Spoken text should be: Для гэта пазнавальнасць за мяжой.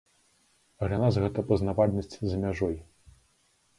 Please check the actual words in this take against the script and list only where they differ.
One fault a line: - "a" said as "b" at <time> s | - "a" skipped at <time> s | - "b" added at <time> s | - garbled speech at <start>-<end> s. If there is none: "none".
- "нас" added at 1.0 s